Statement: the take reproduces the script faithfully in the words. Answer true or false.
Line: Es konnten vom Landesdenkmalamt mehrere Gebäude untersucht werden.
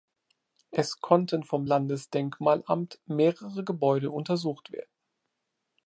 true